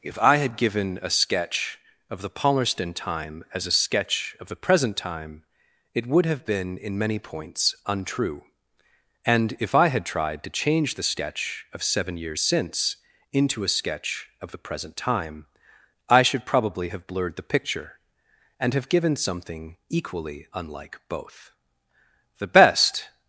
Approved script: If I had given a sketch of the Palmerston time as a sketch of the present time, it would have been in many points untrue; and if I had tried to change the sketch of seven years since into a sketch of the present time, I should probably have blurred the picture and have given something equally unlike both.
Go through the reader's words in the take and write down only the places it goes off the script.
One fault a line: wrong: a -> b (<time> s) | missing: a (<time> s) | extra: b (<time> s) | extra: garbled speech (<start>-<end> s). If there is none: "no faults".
extra: The best (22.4 s)